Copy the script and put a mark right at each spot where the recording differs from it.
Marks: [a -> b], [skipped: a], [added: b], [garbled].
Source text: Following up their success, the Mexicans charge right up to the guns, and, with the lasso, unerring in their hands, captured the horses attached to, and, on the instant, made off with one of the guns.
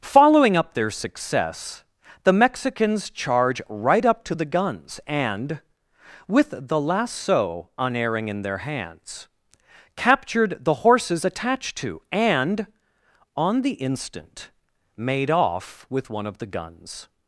Following up their success, the Mexicans charge right up to the guns, and, with the lasso, unerring in their hands, captured the horses attached to, and, on the instant, made off with one of the guns.